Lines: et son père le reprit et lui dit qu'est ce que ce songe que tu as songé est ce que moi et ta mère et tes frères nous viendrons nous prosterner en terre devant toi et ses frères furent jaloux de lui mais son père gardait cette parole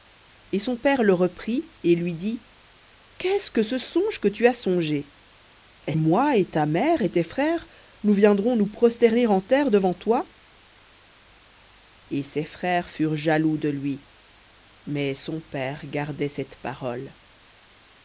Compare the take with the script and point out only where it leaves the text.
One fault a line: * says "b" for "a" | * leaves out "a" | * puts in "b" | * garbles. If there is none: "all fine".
* leaves out "ce que"